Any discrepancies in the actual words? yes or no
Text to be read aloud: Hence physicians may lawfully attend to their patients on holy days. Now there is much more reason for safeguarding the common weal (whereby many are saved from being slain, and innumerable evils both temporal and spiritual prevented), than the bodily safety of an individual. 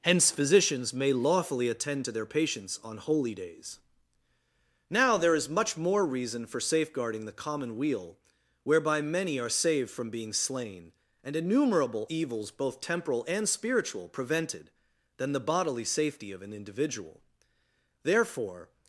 yes